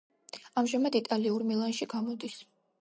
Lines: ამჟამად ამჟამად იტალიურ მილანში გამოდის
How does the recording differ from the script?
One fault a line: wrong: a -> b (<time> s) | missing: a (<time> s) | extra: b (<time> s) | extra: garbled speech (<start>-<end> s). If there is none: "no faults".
missing: ამჟამად (1.0 s)